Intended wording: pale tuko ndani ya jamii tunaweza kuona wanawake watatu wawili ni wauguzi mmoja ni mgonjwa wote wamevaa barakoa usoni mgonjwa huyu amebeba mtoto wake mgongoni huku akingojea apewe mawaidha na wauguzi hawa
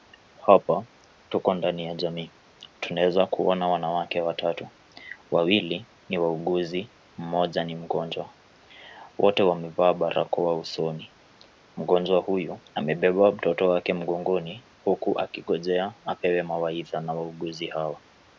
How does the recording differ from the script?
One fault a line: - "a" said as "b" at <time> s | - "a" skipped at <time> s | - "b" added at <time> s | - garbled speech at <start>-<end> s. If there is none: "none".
- "pale" said as "hapa" at 0.5 s